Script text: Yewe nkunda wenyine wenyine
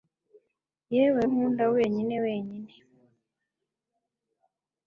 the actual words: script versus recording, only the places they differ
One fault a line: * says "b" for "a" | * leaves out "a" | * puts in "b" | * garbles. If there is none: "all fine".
all fine